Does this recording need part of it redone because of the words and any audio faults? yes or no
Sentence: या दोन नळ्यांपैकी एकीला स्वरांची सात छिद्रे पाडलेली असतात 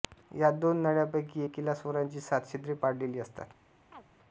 yes